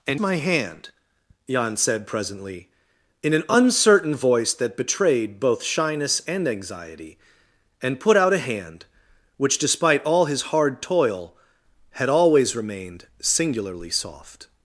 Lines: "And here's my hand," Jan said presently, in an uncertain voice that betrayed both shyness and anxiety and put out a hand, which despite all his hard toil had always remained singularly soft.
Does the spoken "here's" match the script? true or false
false